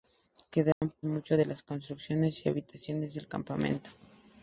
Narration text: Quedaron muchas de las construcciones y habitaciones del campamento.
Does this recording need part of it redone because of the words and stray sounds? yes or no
yes